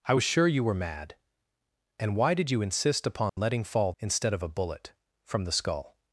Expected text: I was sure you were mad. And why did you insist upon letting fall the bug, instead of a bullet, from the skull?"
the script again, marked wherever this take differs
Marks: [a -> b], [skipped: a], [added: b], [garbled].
I was sure you were mad. And why did you insist upon letting fall [skipped: the bug,] instead of a bullet, from the skull?"